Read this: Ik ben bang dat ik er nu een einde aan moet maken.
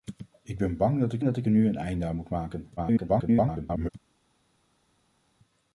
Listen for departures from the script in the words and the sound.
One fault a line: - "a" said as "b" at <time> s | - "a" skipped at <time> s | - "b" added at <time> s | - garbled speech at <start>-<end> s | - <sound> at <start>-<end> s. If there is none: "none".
- "dat ik" added at 1.2 s
- garbled speech at 2.8-3.9 s